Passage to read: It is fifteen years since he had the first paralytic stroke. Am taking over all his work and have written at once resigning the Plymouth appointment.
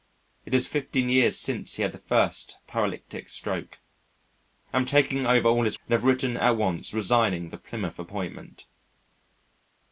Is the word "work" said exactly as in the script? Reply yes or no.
no